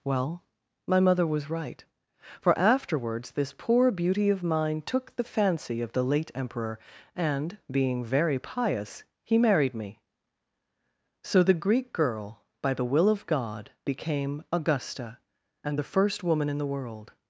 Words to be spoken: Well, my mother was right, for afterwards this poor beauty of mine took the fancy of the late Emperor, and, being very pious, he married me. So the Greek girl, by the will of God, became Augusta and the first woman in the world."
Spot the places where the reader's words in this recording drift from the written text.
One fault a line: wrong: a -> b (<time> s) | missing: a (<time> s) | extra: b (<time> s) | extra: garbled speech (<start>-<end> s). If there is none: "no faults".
no faults